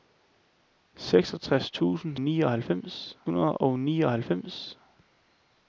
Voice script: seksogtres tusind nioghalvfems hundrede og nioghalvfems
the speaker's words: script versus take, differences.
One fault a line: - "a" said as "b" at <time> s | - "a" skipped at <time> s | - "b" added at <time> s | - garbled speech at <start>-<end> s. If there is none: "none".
none